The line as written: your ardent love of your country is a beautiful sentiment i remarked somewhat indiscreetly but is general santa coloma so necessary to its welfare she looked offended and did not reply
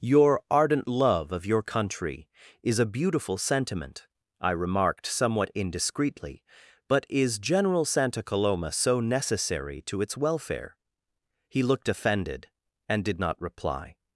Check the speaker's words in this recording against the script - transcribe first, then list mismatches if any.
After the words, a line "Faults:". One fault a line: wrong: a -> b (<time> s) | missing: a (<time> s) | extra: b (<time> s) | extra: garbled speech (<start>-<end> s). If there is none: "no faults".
your ardent love of your country is a beautiful sentiment i remarked somewhat indiscreetly but is general santa coloma so necessary to its welfare he looked offended and did not reply
Faults:
wrong: she -> he (11.5 s)